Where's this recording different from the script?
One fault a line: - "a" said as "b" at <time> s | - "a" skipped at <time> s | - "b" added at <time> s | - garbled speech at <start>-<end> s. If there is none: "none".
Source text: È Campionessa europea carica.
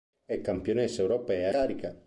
none